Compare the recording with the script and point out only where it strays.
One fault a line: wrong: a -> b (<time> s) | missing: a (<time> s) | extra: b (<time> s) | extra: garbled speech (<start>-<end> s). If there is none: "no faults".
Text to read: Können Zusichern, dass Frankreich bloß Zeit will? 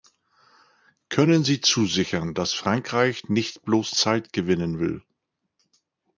extra: Sie (1.4 s)
extra: nicht (3.3 s)
extra: gewinnen (4.3 s)